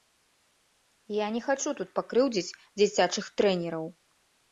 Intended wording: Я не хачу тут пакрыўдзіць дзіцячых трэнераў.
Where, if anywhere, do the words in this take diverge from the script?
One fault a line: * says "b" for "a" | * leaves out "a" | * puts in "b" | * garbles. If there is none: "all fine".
all fine